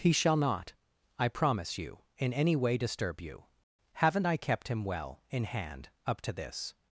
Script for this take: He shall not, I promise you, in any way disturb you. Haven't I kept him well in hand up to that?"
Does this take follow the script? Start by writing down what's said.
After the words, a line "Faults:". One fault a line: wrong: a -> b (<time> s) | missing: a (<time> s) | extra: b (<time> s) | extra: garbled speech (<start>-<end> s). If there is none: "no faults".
He shall not, I promise you, in any way disturb you. Haven't I kept him well in hand up to this?"
Faults:
wrong: that -> this (6.3 s)